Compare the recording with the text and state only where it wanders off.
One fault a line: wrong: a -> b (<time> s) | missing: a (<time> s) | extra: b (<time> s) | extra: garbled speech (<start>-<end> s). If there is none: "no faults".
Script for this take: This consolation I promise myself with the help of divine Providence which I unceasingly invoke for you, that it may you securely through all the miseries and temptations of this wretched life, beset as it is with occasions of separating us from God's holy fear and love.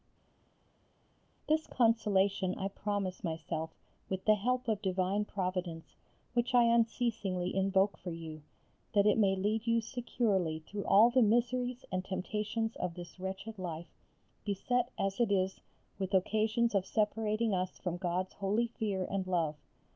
extra: lead (9.3 s)